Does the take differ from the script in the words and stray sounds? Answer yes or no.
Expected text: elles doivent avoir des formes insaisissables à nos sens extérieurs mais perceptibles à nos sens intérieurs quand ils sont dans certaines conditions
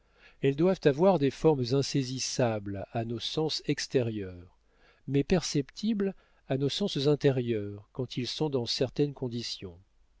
no